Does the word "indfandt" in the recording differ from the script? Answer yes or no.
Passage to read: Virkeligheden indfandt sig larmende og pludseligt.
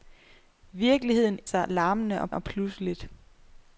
yes